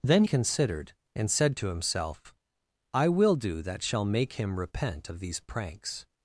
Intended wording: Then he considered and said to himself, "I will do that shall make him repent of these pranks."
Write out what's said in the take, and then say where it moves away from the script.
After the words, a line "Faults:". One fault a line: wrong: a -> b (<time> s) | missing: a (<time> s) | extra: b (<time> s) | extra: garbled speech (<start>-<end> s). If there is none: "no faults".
Then considered and said to himself, "I will do that shall make him repent of these pranks."
Faults:
missing: he (0.2 s)